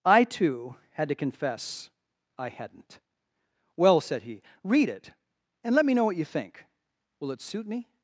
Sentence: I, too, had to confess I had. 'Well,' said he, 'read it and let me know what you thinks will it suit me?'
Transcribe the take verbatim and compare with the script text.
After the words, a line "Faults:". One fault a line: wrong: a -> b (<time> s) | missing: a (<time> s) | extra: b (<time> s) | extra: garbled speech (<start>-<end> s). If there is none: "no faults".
I, too, had to confess I hadn't. 'Well,' said he, 'read it and let me know what you think will it suit me?'
Faults:
wrong: had -> hadn't (2.5 s)
wrong: thinks -> think (6.2 s)